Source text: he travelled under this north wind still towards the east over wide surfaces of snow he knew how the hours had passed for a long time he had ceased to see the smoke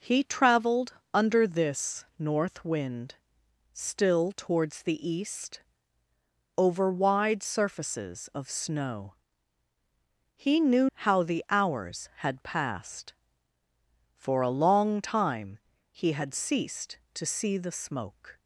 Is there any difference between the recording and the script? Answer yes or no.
no